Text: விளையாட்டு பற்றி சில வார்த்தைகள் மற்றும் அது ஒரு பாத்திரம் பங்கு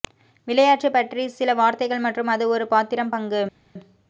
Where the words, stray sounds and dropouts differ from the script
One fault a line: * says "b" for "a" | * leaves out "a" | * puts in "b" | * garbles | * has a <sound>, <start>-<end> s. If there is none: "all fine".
all fine